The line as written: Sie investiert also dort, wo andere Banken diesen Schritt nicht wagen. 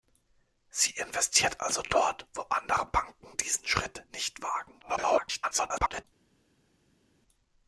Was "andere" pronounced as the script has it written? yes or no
yes